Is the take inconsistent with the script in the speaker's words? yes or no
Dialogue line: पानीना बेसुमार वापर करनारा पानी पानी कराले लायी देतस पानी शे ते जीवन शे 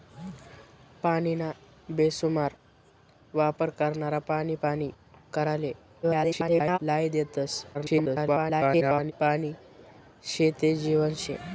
yes